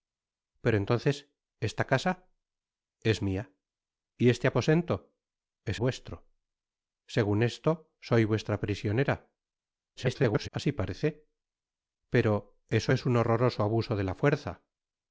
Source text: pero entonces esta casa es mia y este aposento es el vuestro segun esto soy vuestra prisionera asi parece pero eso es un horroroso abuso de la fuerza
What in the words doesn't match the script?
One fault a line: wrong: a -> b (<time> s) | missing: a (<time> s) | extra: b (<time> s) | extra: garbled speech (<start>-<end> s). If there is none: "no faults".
missing: el (5.8 s)
extra: garbled speech (10.0-10.5 s)